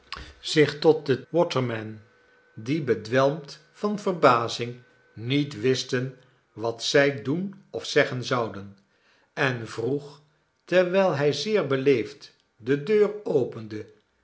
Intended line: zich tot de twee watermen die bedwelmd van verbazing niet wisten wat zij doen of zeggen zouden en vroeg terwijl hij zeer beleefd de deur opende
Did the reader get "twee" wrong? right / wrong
wrong